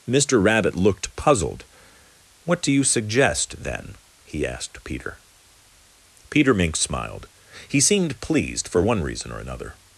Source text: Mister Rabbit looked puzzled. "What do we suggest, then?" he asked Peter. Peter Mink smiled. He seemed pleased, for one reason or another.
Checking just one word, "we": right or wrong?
wrong